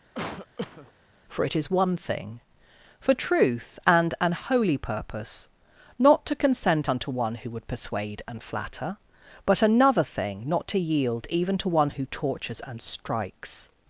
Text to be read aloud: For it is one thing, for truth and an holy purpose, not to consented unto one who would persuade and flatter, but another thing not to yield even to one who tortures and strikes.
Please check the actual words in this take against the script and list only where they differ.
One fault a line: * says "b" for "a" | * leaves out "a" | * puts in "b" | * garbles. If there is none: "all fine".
* says "consent" for "consented"